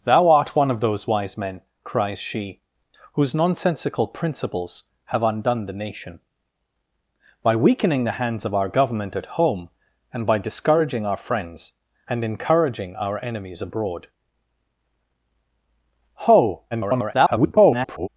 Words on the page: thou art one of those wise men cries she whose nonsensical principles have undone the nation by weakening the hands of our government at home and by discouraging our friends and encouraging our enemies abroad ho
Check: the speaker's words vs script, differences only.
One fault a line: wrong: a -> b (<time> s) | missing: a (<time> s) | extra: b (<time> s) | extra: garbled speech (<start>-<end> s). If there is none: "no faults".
extra: garbled speech (16.7-18.1 s)